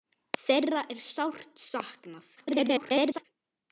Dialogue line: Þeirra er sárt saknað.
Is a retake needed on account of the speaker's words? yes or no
yes